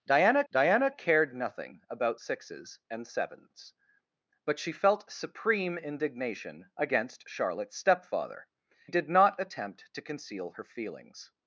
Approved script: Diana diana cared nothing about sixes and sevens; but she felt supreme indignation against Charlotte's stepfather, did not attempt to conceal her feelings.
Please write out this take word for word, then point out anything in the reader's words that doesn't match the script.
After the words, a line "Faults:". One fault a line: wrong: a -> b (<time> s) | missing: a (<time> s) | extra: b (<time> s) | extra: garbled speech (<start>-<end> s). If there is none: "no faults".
Diana diana cared nothing about sixes and sevens; but she felt supreme indignation against Charlotte's stepfather, did not attempt to conceal her feelings.
Faults:
no faults